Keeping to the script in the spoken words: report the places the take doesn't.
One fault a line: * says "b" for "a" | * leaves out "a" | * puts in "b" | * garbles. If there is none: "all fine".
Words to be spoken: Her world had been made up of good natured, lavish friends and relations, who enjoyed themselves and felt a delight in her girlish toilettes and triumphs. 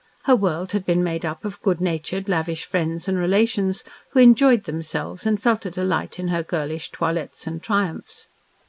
all fine